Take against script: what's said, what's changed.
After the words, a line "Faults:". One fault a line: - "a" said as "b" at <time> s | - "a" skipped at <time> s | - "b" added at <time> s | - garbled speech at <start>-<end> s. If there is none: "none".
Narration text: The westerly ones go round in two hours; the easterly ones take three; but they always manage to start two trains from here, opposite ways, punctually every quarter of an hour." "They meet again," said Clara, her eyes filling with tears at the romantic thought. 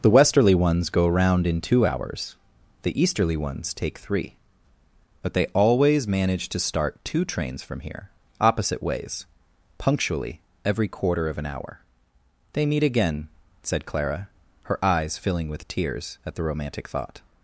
The westerly ones go round in two hours; the easterly ones take three; but they always manage to start two trains from here, opposite ways, punctually every quarter of an hour." "They meet again," said Clara, her eyes filling with tears at the romantic thought.
Faults:
none